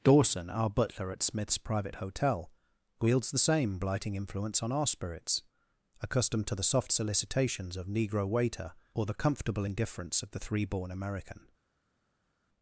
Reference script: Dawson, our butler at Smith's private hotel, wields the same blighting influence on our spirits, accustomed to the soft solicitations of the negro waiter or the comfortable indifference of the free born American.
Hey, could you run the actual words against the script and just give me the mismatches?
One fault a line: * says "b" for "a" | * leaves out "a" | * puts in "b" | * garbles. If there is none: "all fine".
* leaves out "the"
* says "three" for "free"